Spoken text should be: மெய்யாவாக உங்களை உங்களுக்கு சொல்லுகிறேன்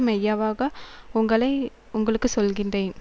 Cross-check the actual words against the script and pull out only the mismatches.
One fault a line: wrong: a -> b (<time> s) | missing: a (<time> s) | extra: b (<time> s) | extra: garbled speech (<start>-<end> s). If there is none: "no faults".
no faults